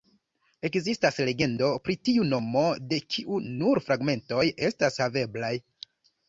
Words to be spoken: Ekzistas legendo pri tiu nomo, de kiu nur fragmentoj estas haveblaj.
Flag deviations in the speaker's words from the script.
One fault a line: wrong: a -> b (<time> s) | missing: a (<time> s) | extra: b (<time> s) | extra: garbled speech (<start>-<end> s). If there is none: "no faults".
no faults